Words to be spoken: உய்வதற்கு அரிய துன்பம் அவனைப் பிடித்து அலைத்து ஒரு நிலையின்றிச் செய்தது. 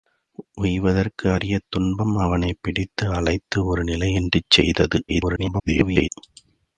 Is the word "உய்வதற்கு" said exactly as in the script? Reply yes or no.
yes